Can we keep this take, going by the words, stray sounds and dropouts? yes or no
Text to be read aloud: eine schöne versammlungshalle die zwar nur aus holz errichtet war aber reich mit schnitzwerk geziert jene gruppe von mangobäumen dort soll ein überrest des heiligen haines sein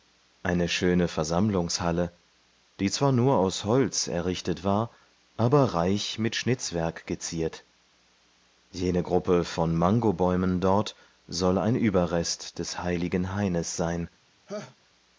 no